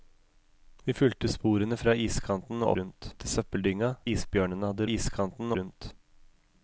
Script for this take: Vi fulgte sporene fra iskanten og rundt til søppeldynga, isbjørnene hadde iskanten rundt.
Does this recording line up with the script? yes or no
yes